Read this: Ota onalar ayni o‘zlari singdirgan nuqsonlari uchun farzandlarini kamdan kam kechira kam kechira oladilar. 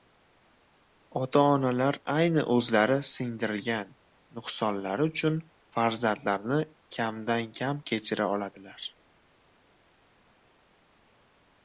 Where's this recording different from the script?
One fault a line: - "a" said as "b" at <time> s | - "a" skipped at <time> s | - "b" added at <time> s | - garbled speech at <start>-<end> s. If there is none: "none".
- "kam kechira" skipped at 8.3 s